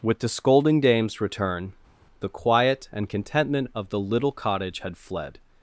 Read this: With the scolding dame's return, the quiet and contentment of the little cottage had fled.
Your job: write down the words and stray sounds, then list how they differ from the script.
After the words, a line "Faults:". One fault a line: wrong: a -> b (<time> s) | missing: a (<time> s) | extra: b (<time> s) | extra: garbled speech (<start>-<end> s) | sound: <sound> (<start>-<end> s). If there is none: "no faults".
With the scolding dame's return, the quiet and contentment of the little cottage had fled.
Faults:
no faults